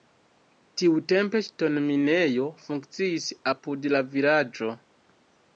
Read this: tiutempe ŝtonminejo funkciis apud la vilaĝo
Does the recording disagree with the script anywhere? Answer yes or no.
no